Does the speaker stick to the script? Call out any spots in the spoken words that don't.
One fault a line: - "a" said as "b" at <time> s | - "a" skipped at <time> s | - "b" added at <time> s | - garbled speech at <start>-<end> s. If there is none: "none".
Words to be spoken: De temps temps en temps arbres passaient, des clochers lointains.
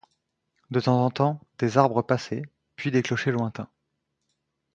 - "temps" skipped at 1.1 s
- "des" added at 1.6 s
- "puis" added at 2.8 s